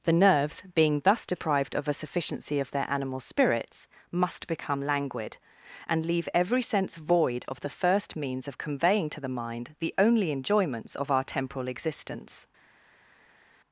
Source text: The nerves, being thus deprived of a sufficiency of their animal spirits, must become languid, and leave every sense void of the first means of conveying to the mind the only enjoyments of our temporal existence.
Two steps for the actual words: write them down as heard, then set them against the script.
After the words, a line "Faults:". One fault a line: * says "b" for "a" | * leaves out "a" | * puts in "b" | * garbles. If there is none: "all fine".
The nerves, being thus deprived of a sufficiency of their animal spirits, must become languid, and leave every sense void of the first means of conveying to the mind the only enjoyments of our temporal existence.
Faults:
all fine